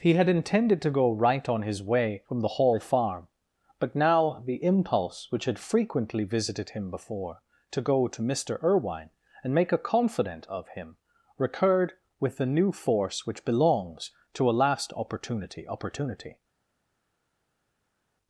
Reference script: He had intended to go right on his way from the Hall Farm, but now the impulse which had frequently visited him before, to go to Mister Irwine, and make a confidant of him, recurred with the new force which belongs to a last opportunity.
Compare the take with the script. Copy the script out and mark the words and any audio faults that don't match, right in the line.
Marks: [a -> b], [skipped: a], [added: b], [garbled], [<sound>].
He had intended to go right on his way from the Hall Farm, but now the impulse which had frequently visited him before, to go to Mister Irwine, and make a confidant of him, recurred with the new force which belongs to a last opportunity. [added: opportunity]